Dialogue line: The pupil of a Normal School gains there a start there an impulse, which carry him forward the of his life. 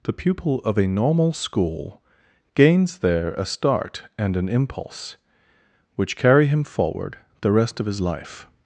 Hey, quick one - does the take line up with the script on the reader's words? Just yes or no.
no